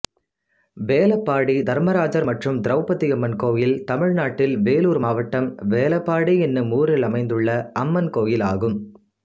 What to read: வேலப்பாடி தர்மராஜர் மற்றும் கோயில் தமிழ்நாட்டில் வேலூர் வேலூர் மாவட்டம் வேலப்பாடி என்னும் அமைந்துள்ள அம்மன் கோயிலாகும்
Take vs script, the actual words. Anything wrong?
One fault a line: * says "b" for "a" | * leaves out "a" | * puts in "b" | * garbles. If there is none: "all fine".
* puts in "திரௌபதியம்மன்"
* leaves out "வேலூர்"
* puts in "ஊரில்"